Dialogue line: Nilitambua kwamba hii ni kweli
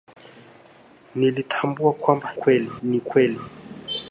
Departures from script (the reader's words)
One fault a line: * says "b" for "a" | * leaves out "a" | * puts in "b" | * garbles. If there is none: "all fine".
* says "kweli" for "hii"